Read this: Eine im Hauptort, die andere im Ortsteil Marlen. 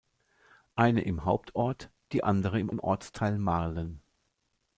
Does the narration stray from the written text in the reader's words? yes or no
yes